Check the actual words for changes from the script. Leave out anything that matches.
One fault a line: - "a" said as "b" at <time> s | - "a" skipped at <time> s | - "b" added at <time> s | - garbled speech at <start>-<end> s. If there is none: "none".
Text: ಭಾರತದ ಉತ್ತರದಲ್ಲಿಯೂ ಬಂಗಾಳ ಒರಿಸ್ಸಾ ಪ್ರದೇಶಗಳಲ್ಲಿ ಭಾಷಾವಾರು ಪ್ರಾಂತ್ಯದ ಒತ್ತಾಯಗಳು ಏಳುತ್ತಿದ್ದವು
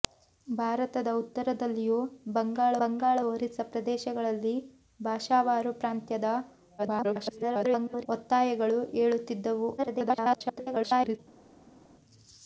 - "ಬಂಗಾಳ" added at 2.8 s
- garbled speech at 6.8-8.1 s
- garbled speech at 9.8-11.2 s